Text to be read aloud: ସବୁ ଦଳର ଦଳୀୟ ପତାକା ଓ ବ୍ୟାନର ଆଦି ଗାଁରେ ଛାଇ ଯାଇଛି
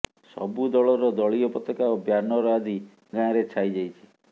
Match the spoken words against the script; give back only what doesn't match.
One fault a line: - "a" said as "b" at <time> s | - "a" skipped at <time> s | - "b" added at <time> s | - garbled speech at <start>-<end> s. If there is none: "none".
none